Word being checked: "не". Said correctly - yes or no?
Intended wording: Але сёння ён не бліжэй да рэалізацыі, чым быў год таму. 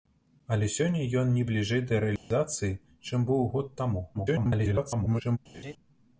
yes